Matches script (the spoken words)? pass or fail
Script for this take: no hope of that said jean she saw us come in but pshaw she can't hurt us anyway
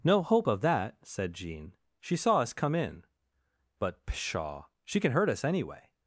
fail